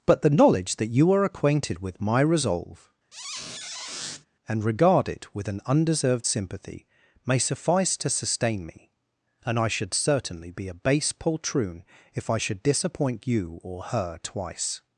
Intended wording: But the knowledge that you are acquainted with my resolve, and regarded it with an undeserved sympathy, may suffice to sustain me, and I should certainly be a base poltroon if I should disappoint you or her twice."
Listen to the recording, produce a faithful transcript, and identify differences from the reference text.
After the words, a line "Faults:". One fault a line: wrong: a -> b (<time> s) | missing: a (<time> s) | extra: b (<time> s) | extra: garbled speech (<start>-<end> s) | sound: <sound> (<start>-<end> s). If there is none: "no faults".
But the knowledge that you are acquainted with my resolve, and regard it with an undeserved sympathy, may suffice to sustain me, and I should certainly be a base poltroon if I should disappoint you or her twice."
Faults:
sound: squeak (3.1-4.3 s)
wrong: regarded -> regard (4.6 s)